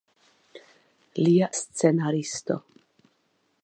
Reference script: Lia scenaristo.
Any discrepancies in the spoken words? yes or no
no